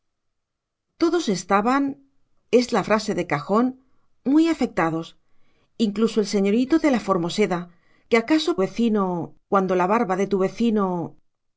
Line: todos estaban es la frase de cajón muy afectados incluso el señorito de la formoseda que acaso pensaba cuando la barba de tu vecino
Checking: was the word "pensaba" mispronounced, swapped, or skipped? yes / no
yes